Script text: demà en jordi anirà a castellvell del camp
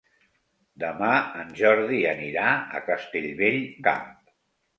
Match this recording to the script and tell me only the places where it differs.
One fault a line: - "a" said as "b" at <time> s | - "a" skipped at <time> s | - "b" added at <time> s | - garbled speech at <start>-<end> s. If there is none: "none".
- "del" skipped at 3.6 s